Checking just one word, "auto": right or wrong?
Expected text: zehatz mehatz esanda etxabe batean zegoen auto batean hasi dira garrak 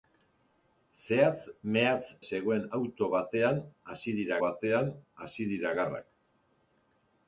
wrong